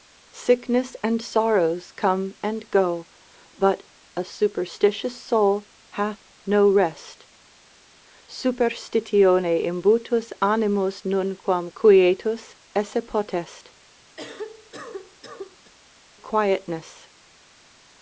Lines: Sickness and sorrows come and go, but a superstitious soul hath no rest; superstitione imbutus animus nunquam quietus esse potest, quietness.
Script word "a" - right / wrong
right